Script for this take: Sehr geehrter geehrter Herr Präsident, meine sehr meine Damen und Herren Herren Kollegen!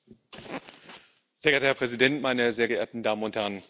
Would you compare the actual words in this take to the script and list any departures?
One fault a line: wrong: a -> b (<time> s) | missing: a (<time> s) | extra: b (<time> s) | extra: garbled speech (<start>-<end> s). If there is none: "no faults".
missing: geehrter (1.7 s)
wrong: meine -> geehrten (2.7 s)
missing: Herren (3.6 s)